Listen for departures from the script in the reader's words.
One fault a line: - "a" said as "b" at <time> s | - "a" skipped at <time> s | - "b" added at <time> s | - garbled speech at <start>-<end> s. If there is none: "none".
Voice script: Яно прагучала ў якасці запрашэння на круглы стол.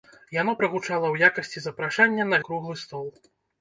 none